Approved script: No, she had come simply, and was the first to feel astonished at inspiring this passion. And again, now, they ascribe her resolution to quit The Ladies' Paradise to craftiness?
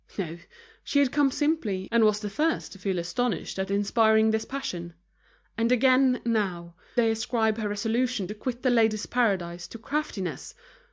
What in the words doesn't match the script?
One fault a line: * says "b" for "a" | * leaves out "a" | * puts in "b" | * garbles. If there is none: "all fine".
all fine